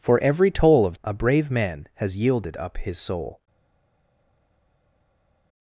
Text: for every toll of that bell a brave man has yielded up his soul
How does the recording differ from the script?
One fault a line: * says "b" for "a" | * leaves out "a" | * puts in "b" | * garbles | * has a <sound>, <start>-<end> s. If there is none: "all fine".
* leaves out "that bell"